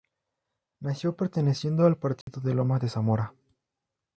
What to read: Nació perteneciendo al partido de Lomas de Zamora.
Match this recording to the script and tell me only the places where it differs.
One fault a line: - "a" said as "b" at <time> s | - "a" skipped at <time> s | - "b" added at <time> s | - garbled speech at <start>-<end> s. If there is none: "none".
none